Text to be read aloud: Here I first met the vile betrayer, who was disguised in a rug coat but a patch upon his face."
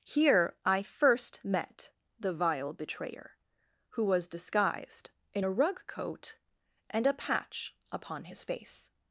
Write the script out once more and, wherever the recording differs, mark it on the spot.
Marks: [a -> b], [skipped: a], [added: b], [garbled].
Here I first met the vile betrayer, who was disguised in a rug coat [but -> and] a patch upon his face."